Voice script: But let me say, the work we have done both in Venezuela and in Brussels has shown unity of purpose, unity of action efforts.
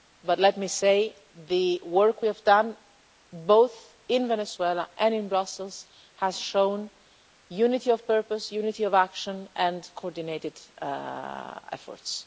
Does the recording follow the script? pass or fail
fail